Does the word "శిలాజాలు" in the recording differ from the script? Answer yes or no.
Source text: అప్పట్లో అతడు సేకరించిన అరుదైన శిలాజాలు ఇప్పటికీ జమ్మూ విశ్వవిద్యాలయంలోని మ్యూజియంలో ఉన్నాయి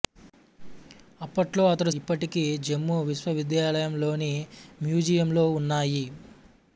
yes